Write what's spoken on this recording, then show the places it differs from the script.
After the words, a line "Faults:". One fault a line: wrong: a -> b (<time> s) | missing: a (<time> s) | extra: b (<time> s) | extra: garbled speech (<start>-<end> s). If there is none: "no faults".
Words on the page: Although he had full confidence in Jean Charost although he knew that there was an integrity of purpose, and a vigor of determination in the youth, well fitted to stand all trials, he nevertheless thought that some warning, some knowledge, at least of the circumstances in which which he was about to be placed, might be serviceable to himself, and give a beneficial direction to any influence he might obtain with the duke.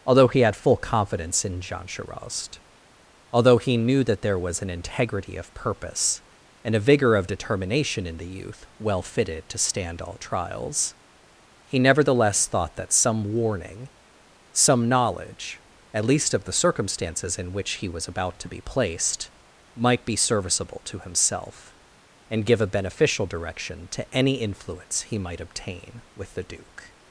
Although he had full confidence in Jean Charost although he knew that there was an integrity of purpose, and a vigor of determination in the youth, well fitted to stand all trials, he nevertheless thought that some warning, some knowledge, at least of the circumstances in which he was about to be placed, might be serviceable to himself, and give a beneficial direction to any influence he might obtain with the duke.
Faults:
missing: which (17.8 s)